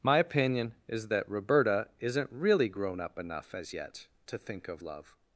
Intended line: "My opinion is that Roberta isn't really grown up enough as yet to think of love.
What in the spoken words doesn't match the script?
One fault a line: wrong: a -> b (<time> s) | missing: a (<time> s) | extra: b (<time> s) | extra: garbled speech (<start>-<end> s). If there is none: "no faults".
no faults